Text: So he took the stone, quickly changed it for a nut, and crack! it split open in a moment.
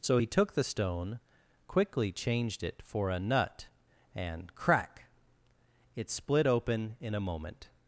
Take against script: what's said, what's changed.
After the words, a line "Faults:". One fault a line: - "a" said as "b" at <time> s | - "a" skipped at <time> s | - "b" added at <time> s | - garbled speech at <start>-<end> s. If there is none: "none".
So he took the stone, quickly changed it for a nut, and crack! it split open in a moment.
Faults:
none